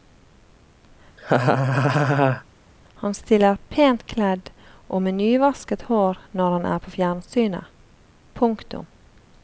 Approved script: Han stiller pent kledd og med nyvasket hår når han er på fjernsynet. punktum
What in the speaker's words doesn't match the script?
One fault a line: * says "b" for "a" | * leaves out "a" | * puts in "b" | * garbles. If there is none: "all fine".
all fine